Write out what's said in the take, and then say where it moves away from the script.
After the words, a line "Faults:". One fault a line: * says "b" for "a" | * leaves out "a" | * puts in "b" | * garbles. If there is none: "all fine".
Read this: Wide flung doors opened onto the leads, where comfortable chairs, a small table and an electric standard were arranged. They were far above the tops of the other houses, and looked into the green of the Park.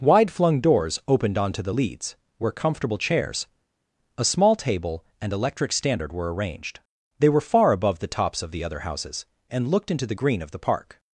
Wide flung doors opened onto the leads, where comfortable chairs, a small table and electric standard were arranged. They were far above the tops of the other houses, and looked into the green of the Park.
Faults:
* leaves out "an"